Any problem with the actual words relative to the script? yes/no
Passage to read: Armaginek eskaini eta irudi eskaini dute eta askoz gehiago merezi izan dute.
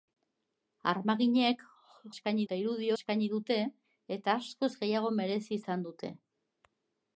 no